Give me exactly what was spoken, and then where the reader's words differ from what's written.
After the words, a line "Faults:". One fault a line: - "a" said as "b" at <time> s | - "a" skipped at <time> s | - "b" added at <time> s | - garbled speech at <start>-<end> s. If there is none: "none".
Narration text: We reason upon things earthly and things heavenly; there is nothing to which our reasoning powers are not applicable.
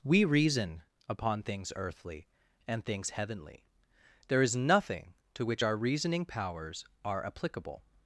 We reason upon things earthly and things heavenly; there is nothing to which our reasoning powers are applicable.
Faults:
- "not" skipped at 7.2 s